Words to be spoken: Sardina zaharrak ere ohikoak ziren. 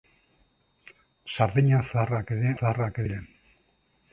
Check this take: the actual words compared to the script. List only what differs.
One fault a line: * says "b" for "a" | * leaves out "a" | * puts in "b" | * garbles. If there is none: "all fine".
* says "zaharrak" for "ohikoak"